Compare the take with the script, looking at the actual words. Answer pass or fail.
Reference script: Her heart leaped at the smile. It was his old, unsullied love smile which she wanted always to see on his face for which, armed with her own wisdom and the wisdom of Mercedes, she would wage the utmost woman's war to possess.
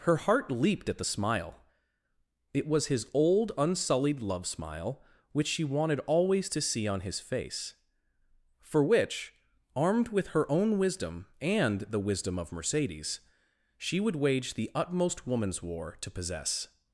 pass